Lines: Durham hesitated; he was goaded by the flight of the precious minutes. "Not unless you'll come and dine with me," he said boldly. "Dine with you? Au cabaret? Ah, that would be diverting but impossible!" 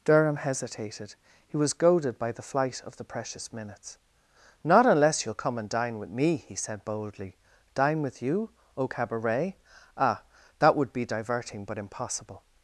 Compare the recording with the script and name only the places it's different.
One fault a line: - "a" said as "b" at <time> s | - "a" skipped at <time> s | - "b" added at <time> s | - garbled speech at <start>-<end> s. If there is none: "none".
none